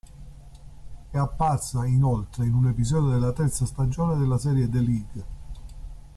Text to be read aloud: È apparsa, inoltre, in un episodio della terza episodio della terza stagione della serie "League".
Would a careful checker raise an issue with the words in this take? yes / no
yes